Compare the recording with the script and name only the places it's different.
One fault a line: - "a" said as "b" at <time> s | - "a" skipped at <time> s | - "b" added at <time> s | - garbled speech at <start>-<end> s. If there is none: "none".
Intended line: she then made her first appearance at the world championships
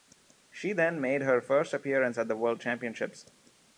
none